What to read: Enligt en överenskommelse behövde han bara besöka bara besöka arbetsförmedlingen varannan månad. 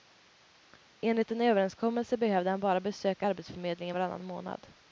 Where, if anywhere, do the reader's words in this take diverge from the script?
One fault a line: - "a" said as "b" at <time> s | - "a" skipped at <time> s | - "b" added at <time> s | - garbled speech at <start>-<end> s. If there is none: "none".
- "bara besöka" skipped at 3.3 s